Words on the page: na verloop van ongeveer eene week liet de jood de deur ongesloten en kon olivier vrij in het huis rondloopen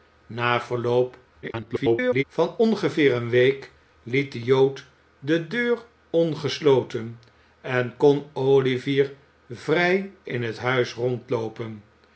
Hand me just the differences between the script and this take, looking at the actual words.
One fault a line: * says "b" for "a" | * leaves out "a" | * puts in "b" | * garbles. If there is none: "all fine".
* garbles